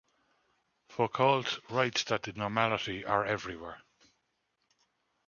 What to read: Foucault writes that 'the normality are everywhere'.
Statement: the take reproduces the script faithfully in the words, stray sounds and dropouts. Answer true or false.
true